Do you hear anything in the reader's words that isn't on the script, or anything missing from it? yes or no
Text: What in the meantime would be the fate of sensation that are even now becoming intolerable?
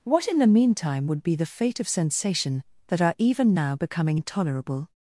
no